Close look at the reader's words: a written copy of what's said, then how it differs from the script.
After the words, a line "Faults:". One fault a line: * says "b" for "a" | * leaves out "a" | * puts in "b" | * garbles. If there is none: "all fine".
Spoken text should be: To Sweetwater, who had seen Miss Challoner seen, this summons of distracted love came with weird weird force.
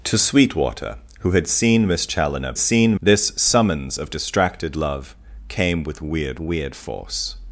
To Sweetwater, who had seen Miss Challoner seen, this summons of distracted love came with weird weird force.
Faults:
all fine